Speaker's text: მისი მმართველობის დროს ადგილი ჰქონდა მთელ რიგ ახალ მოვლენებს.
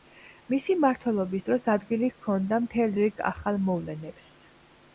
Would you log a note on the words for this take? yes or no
no